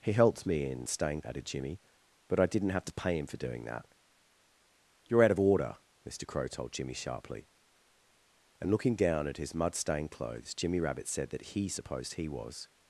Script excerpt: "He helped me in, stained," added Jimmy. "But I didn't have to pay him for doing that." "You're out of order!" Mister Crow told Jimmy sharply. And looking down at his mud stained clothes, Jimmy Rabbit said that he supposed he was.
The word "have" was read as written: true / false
true